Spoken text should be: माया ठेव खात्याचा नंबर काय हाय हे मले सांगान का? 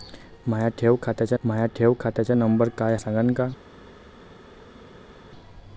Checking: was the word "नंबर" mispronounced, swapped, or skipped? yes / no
yes